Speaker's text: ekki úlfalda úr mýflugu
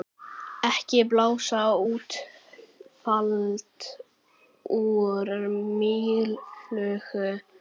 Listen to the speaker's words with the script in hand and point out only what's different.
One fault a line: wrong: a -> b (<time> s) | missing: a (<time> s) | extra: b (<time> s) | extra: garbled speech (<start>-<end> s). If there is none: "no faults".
extra: blása (1.1 s)